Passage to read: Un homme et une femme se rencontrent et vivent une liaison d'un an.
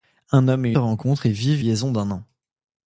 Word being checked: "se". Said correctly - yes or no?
no